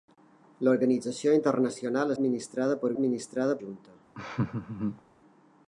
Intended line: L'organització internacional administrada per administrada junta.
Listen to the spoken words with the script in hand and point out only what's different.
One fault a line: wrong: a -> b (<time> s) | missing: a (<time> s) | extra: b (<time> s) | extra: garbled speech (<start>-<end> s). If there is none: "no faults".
no faults